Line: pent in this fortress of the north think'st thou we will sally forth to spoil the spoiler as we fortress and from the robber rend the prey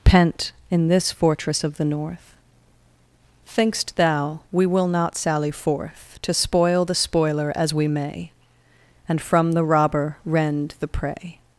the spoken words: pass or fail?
fail